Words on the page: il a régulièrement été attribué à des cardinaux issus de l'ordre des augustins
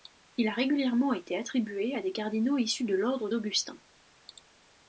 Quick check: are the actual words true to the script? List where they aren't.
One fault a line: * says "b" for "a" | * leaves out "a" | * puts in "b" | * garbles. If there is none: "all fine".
* leaves out "des"